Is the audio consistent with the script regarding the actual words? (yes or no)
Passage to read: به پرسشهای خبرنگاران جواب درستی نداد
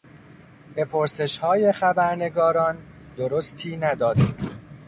no